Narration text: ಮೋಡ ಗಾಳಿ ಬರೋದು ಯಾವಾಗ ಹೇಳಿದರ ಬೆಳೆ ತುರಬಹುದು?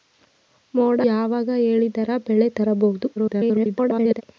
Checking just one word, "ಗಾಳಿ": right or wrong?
wrong